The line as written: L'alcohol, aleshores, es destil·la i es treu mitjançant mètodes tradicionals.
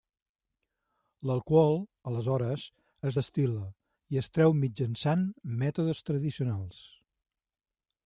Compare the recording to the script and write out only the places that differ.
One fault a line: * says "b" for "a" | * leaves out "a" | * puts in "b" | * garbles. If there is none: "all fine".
all fine